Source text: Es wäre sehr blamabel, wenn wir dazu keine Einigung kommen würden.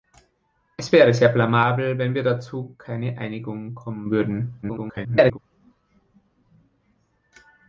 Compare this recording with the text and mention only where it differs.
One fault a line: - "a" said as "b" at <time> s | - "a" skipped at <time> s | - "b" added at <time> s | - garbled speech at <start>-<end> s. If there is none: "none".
- garbled speech at 4.6-5.4 s